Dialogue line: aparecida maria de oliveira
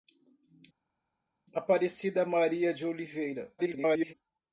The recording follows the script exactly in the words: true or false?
false